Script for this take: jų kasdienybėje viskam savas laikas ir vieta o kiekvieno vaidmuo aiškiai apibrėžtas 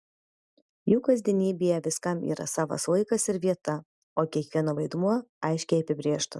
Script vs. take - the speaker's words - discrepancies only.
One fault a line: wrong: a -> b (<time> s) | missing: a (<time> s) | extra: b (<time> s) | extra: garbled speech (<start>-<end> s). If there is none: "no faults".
extra: yra (2.3 s)